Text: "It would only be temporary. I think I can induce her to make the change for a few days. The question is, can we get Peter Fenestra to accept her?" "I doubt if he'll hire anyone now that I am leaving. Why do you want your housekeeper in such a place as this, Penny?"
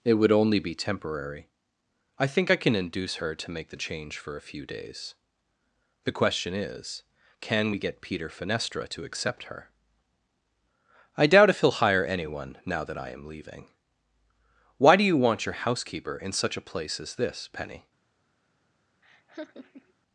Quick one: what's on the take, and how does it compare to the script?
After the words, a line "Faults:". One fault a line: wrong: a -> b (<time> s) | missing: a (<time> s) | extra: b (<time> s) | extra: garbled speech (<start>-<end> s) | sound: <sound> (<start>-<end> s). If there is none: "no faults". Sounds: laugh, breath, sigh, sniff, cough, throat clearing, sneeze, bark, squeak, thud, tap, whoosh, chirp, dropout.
"It would only be temporary. I think I can induce her to make the change for a few days. The question is, can we get Peter Fenestra to accept her?" "I doubt if he'll hire anyone now that I am leaving. Why do you want your housekeeper in such a place as this, Penny?"
Faults:
sound: laugh (19.0-19.9 s)